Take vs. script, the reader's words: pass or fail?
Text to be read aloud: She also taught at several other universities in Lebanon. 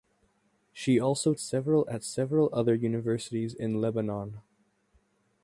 fail